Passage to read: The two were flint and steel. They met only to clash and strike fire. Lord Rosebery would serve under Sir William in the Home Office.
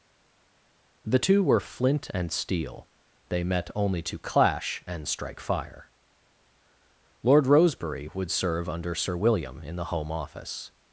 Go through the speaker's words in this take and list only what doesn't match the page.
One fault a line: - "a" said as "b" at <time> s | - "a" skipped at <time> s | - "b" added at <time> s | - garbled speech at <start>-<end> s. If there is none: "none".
none